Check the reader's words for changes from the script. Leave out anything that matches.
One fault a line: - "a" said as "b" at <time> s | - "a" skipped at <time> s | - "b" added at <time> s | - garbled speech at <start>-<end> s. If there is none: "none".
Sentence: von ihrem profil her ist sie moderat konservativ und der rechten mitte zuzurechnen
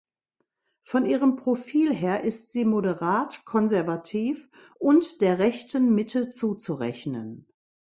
none